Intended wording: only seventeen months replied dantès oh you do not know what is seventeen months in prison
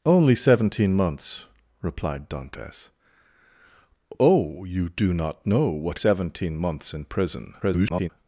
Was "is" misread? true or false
true